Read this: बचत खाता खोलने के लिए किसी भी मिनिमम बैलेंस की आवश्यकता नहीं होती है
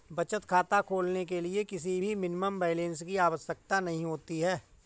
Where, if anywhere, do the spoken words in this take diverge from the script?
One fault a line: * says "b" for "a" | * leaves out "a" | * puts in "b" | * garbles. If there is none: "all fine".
all fine